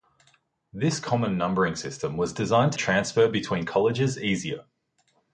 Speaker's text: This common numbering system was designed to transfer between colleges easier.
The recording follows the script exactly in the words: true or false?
true